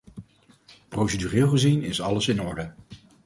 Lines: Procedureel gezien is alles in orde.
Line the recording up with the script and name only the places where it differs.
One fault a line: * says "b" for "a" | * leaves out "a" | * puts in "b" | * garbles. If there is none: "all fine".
all fine